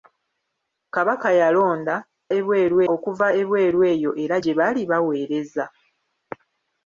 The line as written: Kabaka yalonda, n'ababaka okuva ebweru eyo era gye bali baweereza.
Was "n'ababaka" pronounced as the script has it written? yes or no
no